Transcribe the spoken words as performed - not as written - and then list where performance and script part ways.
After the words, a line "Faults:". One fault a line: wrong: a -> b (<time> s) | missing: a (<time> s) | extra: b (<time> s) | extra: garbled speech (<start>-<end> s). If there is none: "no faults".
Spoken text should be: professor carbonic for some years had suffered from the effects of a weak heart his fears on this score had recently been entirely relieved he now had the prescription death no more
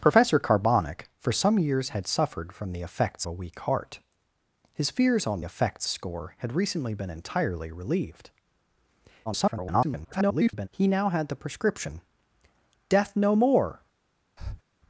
professor carbonic for some years had suffered from the effects a weak heart his fears on effects score had recently been entirely relieved [garbled] he now had the prescription death no more
Faults:
missing: of (3.3 s)
wrong: this -> effects (5.4 s)
extra: garbled speech (9.3-10.7 s)